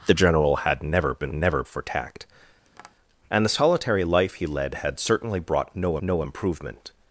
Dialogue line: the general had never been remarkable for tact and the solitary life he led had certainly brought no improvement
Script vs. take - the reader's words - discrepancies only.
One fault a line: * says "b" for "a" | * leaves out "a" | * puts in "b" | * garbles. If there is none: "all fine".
* says "never" for "remarkable"
* puts in "no"